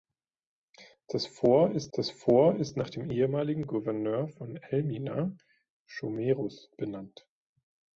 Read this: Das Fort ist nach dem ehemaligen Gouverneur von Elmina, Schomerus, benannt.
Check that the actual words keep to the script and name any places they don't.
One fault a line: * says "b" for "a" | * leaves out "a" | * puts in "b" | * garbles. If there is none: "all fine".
* puts in "das Fort ist"